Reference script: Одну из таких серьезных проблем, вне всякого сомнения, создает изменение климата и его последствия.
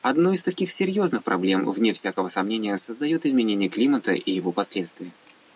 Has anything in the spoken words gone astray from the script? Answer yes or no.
no